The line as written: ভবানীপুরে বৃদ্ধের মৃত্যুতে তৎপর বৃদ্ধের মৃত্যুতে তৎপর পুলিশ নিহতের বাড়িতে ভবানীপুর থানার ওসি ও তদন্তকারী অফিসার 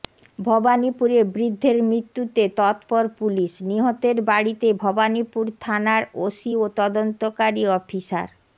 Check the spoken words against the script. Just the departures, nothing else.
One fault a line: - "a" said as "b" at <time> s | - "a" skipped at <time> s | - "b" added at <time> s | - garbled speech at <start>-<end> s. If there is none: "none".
- "বৃদ্ধের মৃত্যুতে তৎপর" skipped at 3.0 s